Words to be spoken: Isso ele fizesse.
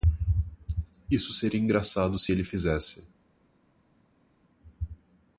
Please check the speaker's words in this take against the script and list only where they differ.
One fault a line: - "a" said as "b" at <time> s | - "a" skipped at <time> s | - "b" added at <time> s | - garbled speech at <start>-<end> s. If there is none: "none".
- "seria engraçado se" added at 1.3 s